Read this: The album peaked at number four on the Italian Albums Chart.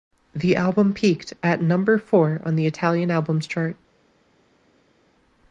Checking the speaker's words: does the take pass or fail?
pass